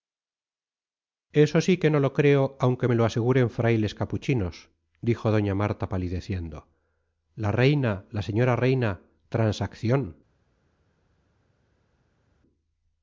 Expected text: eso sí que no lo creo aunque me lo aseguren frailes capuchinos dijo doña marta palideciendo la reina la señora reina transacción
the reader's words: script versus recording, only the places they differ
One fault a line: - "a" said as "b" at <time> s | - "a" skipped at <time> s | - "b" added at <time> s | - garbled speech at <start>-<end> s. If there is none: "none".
none